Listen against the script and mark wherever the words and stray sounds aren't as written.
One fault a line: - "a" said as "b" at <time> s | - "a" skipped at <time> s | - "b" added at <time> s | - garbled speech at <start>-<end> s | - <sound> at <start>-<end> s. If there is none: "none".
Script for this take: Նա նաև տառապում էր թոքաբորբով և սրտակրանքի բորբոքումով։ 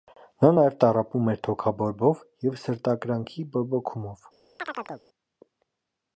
- chirp at 4.6-5.0 s